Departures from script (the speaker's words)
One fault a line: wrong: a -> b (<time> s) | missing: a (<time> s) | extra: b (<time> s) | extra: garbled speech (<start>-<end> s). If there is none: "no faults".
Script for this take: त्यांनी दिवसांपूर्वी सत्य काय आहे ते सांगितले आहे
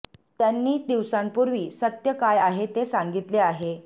no faults